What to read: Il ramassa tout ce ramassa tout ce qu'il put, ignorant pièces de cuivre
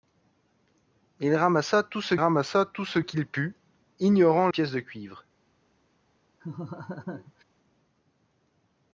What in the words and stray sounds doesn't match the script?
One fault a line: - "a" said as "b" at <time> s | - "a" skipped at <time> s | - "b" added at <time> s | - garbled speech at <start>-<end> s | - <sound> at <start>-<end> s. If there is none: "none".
- laugh at 6.4-7.4 s